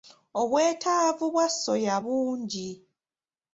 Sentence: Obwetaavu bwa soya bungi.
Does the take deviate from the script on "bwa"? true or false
false